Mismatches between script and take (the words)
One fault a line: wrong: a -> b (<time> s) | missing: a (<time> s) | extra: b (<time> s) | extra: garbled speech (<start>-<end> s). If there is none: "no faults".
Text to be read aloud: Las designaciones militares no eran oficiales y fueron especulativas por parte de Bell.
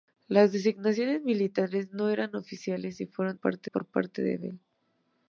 wrong: especulativas -> parte (3.3 s)